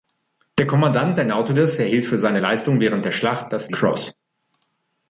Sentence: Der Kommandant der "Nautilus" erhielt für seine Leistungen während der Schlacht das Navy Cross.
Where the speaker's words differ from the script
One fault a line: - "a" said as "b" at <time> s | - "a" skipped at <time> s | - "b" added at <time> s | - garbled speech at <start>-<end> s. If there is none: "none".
- "Navy" skipped at 3.7 s